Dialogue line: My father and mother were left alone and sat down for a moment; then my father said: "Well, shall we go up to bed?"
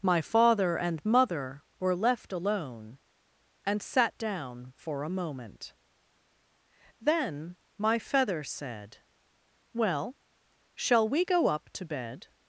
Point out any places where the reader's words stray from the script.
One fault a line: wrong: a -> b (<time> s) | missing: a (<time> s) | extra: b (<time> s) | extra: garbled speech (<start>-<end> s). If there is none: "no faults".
wrong: father -> feather (8.0 s)